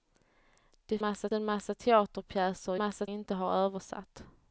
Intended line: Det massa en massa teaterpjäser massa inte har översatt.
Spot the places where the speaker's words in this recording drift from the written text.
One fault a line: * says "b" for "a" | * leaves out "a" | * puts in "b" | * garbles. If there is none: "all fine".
all fine